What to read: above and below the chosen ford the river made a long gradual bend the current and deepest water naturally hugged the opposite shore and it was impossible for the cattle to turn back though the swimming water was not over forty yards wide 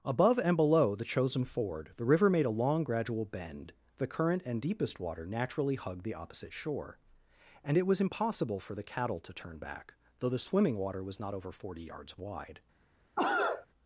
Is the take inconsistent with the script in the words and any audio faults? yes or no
yes